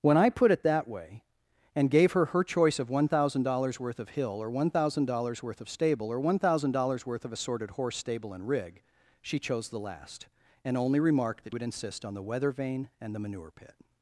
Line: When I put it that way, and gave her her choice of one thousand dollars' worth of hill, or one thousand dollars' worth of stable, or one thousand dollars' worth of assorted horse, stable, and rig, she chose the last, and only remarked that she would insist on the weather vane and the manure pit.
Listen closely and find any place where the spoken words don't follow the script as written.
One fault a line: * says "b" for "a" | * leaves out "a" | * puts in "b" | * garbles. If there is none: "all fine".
* leaves out "she"